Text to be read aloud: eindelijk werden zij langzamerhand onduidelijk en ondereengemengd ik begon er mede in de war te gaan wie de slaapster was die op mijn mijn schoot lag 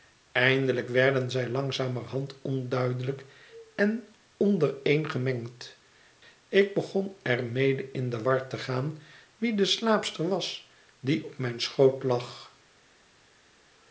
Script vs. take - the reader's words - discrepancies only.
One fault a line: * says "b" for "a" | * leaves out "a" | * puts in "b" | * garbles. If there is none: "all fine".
* leaves out "mijn"